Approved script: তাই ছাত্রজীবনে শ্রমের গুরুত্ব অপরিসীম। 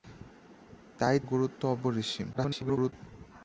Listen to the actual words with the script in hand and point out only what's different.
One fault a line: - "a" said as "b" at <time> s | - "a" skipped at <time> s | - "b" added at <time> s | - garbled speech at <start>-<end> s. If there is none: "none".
- "ছাত্রজীবনে শ্রমের" skipped at 1.2 s
- garbled speech at 2.3-2.9 s